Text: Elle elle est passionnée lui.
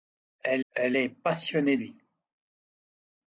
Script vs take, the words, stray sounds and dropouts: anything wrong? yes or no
no